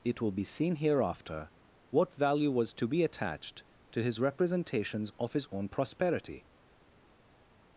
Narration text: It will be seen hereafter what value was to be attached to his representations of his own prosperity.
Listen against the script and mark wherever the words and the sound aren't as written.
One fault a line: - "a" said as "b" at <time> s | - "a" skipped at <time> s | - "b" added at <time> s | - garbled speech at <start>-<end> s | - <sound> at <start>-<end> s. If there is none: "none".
none